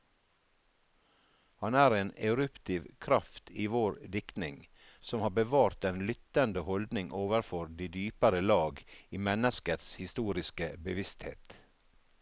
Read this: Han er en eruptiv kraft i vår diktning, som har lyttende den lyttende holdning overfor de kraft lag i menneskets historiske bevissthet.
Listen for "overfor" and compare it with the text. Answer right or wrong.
right